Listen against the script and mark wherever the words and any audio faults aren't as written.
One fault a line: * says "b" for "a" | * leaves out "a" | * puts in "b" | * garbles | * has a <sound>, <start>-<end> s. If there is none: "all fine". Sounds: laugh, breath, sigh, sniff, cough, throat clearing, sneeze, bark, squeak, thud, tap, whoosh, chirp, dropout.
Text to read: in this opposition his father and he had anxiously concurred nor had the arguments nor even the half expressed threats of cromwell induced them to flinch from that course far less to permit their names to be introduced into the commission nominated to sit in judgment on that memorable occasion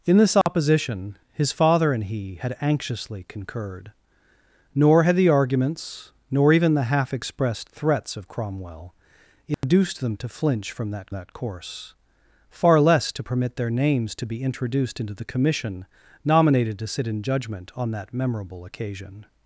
* has a dropout, 0.4-0.5 s
* has a dropout, 9.5-9.6 s
* puts in "that"